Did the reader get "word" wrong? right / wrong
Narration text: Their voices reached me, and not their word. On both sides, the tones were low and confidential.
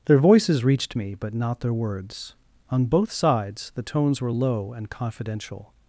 wrong